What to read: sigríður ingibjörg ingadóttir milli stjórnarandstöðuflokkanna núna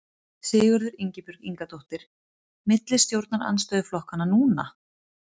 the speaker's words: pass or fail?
pass